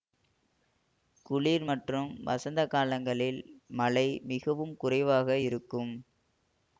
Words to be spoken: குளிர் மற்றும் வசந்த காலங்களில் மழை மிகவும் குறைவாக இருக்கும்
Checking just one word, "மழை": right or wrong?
right